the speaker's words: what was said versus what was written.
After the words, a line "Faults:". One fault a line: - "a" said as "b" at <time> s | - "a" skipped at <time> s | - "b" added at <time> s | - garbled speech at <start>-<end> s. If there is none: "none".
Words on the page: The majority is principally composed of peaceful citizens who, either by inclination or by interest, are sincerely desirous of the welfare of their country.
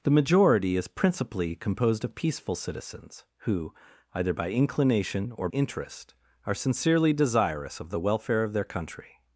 The majority is principally composed of peaceful citizens who, either by inclination or interest, are sincerely desirous of the welfare of their country.
Faults:
- "by" skipped at 5.5 s